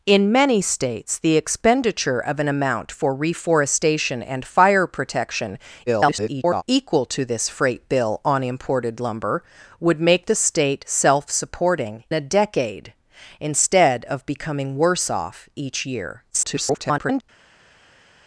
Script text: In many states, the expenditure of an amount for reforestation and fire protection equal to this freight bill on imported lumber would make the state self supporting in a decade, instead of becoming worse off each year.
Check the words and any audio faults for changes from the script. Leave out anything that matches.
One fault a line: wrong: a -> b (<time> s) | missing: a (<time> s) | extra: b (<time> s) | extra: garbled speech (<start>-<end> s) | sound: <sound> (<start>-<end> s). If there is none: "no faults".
extra: garbled speech (5.9-6.6 s)
missing: in (12.0 s)
extra: garbled speech (16.3-17.2 s)